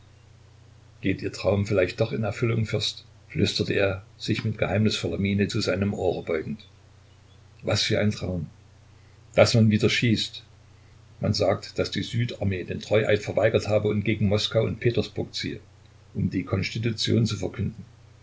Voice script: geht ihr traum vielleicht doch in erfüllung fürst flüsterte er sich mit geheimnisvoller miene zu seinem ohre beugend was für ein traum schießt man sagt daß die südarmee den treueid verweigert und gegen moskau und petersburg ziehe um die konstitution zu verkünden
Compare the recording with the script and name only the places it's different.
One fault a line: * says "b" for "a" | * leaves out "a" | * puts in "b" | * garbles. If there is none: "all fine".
* puts in "daß man wieder"
* puts in "habe"